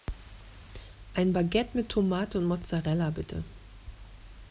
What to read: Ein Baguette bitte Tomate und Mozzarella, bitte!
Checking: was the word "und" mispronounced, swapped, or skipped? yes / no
no